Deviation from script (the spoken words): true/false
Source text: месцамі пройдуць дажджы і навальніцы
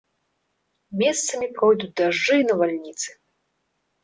false